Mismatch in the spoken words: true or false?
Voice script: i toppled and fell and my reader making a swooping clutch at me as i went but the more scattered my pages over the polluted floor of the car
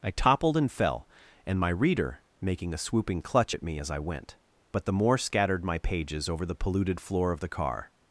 false